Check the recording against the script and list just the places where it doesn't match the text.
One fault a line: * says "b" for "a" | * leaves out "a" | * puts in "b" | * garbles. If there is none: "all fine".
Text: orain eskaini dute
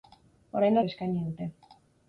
all fine